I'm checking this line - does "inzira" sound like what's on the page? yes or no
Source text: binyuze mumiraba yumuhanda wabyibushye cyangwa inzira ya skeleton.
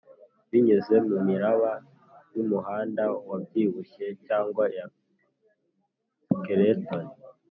no